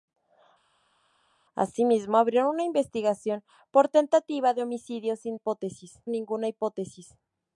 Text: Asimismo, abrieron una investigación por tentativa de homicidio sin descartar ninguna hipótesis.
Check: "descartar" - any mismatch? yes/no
yes